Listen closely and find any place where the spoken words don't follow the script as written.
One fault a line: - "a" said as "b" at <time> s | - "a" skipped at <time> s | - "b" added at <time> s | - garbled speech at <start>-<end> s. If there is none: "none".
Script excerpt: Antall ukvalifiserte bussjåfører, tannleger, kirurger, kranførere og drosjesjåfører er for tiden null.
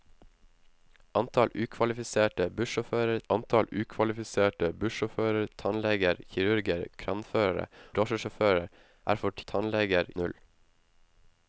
- "antall ukvalifiserte bussjåfører" added at 3.3 s
- "og" skipped at 7.7 s
- "tiden" said as "tannleger" at 9.5 s